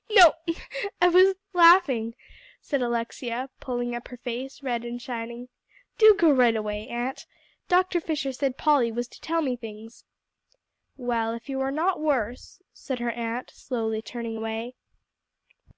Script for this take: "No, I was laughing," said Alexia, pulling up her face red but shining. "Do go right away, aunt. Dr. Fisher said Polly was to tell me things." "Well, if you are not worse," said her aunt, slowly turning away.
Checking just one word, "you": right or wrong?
right